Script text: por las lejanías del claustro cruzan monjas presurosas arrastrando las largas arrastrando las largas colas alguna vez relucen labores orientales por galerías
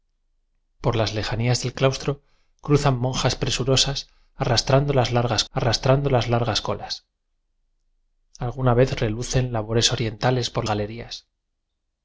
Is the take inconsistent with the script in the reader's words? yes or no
no